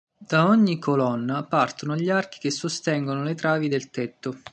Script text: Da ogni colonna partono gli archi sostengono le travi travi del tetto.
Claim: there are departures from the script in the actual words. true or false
true